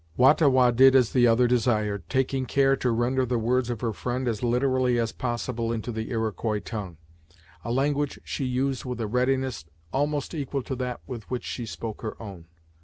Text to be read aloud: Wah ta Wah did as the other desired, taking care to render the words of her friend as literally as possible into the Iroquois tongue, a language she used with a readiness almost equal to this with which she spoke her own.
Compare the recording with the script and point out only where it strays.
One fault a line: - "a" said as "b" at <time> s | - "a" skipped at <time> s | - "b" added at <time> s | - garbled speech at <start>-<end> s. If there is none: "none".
- "this" said as "that" at 10.7 s